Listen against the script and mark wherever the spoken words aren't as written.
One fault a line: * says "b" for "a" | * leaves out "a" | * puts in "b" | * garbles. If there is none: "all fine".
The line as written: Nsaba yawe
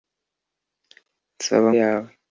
all fine